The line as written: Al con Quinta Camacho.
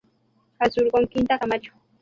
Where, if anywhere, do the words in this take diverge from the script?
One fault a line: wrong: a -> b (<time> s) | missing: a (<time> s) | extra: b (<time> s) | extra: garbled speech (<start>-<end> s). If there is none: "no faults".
extra: sur (0.7 s)